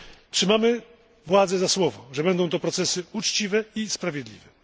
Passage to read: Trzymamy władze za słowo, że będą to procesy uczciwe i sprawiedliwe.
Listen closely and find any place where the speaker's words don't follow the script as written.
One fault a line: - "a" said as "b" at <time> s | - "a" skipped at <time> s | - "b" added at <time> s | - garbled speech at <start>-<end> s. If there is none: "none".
none